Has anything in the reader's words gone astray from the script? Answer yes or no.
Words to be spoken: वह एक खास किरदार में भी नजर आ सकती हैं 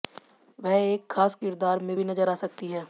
no